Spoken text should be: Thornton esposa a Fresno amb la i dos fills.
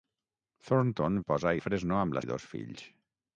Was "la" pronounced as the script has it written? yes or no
yes